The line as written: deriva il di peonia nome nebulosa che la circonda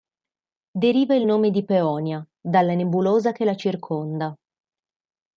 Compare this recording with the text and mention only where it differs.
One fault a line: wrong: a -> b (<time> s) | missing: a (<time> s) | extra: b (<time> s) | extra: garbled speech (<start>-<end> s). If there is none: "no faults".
extra: nome (1.3 s)
wrong: nome -> dalla (2.4 s)